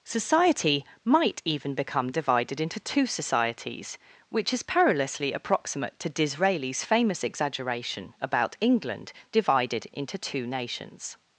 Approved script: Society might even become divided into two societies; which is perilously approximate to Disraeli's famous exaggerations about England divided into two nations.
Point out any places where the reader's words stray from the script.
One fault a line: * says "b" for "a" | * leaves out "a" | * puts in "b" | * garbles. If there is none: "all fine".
* says "exaggeration" for "exaggerations"